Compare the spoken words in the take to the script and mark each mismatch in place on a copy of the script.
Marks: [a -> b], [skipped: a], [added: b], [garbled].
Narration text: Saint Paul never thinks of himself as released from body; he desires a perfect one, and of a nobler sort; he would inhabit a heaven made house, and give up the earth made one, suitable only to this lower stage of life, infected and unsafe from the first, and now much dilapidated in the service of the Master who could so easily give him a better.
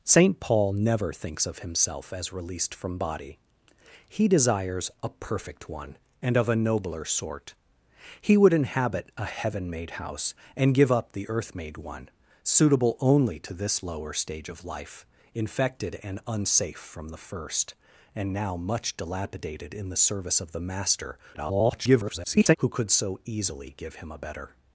Saint Paul never thinks of himself as released from body; he desires a perfect one, and of a nobler sort; he would inhabit a heaven made house, and give up the earth made one, suitable only to this lower stage of life, infected and unsafe from the first, and now much dilapidated in the service of the Master [garbled] who could so easily give him a better.